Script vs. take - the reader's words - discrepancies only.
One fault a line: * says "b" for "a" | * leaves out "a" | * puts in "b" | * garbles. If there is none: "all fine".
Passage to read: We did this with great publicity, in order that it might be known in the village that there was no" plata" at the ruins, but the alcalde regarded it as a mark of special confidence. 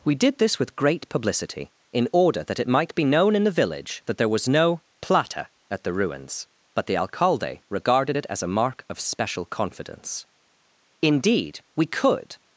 * puts in "Indeed we could"